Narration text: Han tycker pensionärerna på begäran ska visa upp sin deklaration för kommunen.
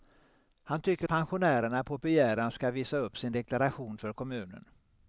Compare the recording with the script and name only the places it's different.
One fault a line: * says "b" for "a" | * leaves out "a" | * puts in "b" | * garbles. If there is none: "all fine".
all fine